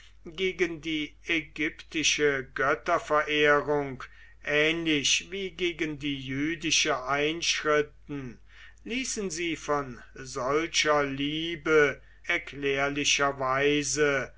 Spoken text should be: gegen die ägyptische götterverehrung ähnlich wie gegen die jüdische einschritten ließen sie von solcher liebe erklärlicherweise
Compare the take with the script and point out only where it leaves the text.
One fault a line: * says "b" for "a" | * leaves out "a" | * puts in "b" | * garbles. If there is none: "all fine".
all fine